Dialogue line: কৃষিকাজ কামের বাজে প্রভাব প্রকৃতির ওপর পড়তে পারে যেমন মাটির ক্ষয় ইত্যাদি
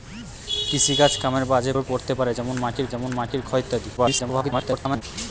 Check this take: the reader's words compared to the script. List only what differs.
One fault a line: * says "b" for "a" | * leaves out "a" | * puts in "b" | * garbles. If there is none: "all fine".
* leaves out "প্রভাব প্রকৃতির"
* puts in "যেমন মাটির"
* garbles